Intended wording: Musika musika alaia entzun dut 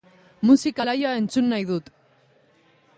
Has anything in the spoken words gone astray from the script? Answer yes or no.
yes